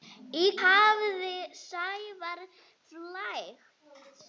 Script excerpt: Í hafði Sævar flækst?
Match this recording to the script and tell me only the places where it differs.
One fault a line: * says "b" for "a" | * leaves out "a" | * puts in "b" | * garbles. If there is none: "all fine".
all fine